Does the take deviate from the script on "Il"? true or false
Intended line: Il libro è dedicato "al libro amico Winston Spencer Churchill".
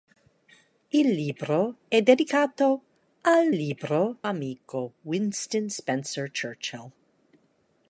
false